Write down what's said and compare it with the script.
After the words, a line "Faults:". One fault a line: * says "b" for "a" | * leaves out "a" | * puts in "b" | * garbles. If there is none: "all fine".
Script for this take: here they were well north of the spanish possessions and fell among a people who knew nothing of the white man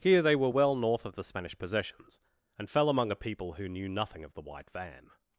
here they were well north of the spanish possessions and fell among a people who knew nothing of the white van
Faults:
* says "van" for "man"